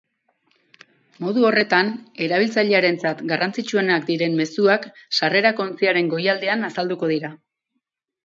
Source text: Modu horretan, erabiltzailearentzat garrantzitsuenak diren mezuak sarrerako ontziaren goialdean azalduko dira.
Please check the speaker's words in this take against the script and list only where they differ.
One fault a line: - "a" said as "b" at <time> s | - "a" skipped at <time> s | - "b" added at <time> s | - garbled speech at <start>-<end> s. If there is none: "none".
none